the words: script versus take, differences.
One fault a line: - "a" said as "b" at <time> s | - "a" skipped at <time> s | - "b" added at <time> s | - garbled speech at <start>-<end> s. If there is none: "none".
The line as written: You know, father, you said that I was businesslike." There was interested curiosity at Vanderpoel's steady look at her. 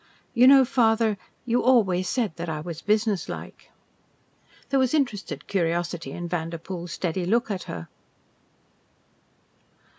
- "always" added at 1.6 s
- "at" said as "in" at 6.1 s